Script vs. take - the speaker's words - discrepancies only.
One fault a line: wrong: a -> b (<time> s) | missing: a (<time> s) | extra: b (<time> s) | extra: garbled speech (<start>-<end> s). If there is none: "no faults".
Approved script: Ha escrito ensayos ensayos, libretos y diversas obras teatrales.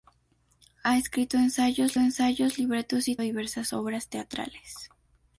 no faults